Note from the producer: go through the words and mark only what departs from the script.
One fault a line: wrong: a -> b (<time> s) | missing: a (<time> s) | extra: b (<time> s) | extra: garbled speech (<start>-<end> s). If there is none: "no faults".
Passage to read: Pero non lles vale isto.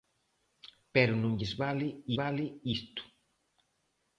extra: vale (2.2 s)